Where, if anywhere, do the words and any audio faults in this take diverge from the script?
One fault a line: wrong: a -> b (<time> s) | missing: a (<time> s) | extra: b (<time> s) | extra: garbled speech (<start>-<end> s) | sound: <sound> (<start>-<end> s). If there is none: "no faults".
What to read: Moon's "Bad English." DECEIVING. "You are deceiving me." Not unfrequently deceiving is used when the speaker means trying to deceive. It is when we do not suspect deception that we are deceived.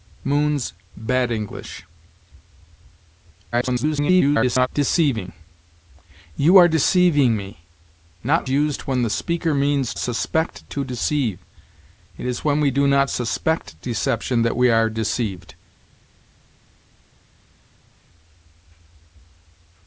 extra: garbled speech (3.5-4.7 s)
missing: unfrequently deceiving is (8.4 s)
wrong: trying -> suspect (10.0 s)